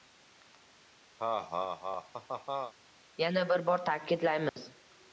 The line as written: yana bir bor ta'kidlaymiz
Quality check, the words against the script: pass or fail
pass